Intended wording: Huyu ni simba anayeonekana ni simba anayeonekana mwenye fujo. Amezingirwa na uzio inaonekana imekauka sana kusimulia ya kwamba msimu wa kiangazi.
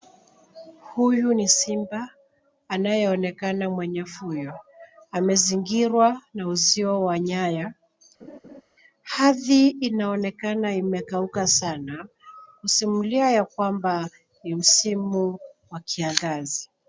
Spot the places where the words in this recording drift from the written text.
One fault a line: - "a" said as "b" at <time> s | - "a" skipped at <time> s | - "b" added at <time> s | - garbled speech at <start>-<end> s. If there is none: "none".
- "ni simba anayeonekana" skipped at 3.7 s
- "wa nyaya Ardhi" added at 7.0 s
- "ni" added at 14.4 s